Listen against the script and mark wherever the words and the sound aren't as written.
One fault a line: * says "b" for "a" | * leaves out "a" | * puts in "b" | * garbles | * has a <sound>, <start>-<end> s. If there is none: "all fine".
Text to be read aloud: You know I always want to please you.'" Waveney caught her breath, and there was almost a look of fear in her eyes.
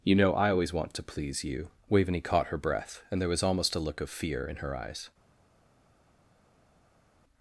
all fine